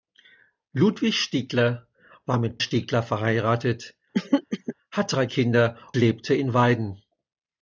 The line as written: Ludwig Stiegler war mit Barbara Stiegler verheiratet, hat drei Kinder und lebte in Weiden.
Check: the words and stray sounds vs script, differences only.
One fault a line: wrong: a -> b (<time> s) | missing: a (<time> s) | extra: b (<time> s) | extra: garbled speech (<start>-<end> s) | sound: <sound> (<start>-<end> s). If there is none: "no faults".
missing: Barbara (2.6 s)
sound: throat clearing (4.1-4.8 s)
missing: und (5.8 s)